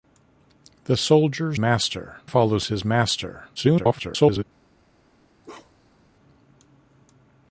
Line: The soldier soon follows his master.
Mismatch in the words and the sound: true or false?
true